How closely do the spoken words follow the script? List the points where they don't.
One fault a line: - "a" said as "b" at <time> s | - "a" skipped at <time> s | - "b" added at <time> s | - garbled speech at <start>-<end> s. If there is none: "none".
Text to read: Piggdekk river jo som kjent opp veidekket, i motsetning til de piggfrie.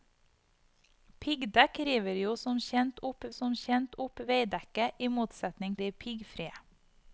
- "som kjent opp" added at 3.4 s
- "til" skipped at 5.8 s